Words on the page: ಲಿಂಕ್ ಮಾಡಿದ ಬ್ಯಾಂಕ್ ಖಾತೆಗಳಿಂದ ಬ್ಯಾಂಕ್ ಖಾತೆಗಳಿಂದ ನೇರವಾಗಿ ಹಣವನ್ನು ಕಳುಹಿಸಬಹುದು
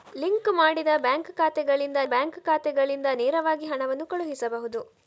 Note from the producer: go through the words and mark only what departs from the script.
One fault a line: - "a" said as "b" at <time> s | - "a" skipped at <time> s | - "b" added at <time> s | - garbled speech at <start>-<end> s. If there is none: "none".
none